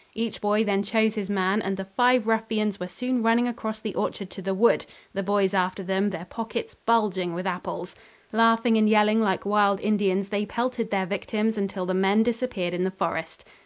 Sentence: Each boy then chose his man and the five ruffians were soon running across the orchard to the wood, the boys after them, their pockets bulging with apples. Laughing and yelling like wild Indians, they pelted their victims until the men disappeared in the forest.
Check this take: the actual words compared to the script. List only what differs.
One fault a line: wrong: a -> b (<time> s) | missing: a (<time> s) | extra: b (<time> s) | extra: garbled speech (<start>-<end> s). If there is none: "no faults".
no faults